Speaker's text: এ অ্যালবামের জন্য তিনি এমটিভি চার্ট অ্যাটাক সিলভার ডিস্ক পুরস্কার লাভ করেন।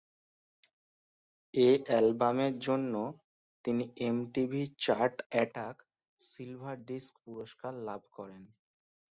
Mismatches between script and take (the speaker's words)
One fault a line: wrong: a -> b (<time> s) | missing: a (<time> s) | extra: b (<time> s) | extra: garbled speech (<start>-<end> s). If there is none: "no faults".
no faults